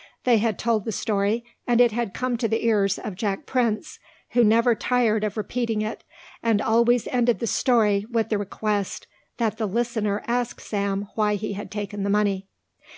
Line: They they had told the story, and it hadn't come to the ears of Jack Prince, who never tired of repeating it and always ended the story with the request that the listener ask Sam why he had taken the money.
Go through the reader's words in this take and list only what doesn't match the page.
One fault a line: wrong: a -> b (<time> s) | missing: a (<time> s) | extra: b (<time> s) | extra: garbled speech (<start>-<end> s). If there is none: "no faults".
missing: they (0.4 s)
wrong: hadn't -> had (1.9 s)